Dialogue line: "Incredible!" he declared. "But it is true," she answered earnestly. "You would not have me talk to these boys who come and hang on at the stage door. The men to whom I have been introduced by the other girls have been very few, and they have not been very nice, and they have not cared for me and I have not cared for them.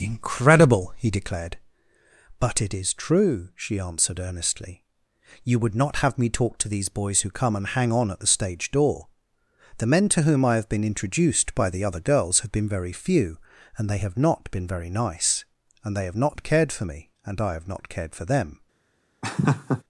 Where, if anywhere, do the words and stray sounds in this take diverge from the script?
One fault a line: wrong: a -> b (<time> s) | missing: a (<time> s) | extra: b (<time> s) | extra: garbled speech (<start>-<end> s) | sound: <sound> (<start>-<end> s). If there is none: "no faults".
sound: laugh (19.2-19.8 s)